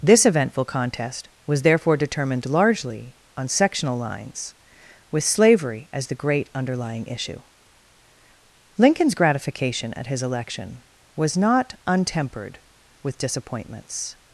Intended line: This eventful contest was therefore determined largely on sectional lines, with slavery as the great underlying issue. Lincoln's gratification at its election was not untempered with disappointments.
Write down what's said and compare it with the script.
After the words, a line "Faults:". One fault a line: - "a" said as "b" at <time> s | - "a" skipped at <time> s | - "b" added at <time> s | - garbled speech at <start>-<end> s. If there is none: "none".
This eventful contest was therefore determined largely on sectional lines, with slavery as the great underlying issue. Lincoln's gratification at his election was not untempered with disappointments.
Faults:
- "its" said as "his" at 10.1 s